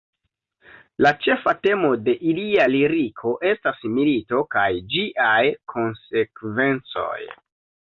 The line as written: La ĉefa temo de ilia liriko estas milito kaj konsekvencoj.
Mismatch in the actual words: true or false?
true